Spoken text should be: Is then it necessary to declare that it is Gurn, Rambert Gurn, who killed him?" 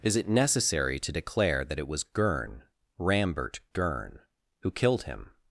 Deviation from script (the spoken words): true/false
true